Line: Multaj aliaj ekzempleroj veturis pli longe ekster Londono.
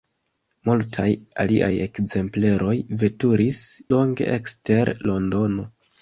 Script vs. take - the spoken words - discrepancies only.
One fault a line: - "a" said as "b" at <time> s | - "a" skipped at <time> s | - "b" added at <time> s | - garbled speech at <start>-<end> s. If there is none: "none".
- "pli" skipped at 3.6 s